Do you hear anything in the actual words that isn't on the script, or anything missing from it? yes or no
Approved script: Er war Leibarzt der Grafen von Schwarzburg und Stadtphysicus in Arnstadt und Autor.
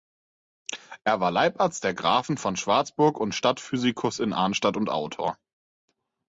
no